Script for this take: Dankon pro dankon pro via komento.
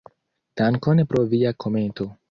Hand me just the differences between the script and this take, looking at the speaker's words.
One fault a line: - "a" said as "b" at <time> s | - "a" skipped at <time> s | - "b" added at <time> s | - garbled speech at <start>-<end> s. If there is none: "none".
- "dankon pro" skipped at 1.2 s